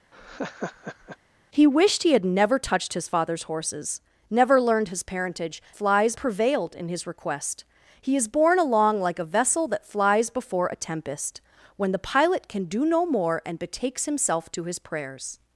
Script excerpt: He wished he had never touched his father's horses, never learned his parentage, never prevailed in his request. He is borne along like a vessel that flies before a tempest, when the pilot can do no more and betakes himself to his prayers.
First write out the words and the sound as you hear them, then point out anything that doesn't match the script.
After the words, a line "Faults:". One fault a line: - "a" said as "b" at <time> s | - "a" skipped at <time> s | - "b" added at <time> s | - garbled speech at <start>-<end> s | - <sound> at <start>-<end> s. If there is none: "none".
He wished he had never touched his father's horses, never learned his parentage, flies prevailed in his request. He is borne along like a vessel that flies before a tempest, when the pilot can do no more and betakes himself to his prayers.
Faults:
- laugh at 0.1-1.2 s
- "never" said as "flies" at 5.7 s